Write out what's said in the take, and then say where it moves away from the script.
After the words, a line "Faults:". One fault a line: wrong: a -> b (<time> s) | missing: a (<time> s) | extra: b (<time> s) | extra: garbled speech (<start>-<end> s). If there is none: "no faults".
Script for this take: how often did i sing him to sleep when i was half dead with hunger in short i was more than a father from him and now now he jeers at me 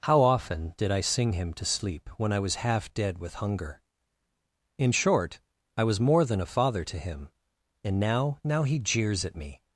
how often did i sing him to sleep when i was half dead with hunger in short i was more than a father to him and now now he jeers at me
Faults:
wrong: from -> to (6.8 s)